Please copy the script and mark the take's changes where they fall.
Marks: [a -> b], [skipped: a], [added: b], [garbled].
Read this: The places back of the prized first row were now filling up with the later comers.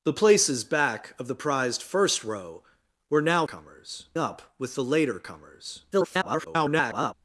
The places back of the prized first row were now [filling -> comers] up with the later comers. [garbled]